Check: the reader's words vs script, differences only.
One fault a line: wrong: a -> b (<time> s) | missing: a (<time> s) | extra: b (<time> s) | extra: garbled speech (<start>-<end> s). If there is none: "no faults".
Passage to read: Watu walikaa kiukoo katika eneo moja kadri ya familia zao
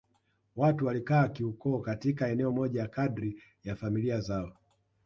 no faults